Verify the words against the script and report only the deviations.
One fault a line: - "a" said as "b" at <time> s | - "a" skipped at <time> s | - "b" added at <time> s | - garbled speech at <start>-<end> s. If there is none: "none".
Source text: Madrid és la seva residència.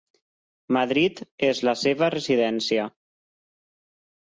none